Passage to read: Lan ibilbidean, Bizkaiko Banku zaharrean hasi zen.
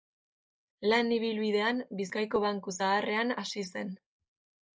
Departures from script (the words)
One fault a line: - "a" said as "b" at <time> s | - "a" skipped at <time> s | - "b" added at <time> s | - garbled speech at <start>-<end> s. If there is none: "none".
none